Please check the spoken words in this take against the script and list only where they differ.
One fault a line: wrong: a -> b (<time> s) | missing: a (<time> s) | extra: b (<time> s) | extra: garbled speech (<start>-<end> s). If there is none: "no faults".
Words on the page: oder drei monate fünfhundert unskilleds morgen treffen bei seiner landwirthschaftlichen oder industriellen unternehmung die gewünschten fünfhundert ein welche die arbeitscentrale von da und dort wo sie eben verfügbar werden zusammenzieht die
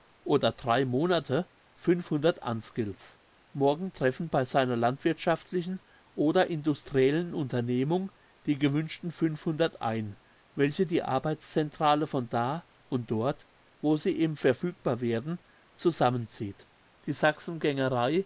no faults